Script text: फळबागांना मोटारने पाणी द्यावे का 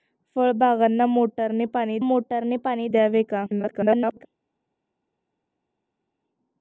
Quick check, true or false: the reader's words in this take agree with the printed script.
false